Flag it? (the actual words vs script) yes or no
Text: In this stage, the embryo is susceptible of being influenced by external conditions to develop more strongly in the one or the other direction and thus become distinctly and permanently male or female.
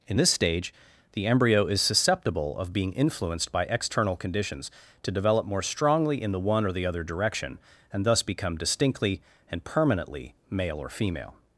no